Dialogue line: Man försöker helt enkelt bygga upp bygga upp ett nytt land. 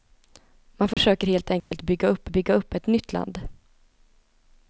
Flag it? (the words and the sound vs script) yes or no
yes